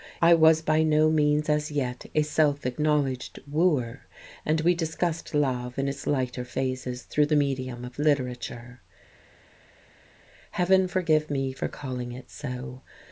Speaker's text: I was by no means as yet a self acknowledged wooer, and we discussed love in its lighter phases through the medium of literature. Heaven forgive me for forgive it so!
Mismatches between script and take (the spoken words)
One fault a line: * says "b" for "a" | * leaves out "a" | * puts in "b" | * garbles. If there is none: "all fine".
* says "calling" for "forgive"